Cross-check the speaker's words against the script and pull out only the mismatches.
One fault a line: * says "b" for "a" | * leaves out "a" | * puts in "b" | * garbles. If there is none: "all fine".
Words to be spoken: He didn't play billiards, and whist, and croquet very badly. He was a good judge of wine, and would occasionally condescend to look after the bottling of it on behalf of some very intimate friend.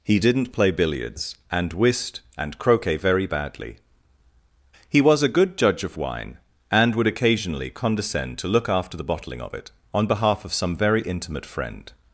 all fine